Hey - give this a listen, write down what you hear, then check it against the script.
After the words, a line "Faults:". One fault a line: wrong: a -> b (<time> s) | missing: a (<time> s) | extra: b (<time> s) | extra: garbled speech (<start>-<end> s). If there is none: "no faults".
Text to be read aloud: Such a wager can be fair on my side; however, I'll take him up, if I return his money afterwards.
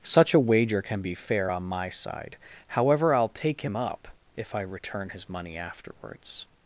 Such a wager can be fair on my side; however, I'll take him up, if I return his money afterwards.
Faults:
no faults